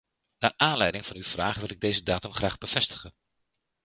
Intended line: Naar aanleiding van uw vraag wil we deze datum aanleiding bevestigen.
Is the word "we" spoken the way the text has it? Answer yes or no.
no